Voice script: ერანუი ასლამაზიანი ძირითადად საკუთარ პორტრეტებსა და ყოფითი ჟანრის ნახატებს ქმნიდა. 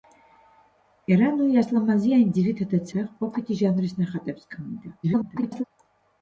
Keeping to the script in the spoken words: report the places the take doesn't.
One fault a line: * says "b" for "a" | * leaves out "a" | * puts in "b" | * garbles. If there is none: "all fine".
* leaves out "საკუთარ პორტრეტებსა"
* garbles